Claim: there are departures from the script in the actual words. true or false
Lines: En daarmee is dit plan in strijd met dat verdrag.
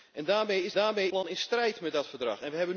true